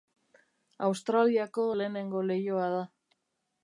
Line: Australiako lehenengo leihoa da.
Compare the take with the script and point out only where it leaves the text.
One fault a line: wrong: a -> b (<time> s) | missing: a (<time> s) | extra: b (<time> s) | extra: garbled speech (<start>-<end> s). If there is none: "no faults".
no faults